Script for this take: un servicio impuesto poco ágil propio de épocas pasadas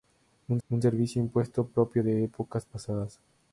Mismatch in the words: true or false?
true